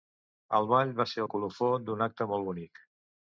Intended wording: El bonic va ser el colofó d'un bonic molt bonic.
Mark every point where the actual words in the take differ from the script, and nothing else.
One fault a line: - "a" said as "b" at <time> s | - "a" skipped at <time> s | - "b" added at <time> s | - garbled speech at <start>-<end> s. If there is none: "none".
- "bonic" said as "ball" at 0.7 s
- "bonic" said as "acte" at 2.1 s